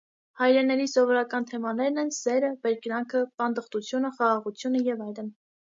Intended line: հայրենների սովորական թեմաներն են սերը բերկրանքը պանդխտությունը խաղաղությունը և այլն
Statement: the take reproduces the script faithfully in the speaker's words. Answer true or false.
true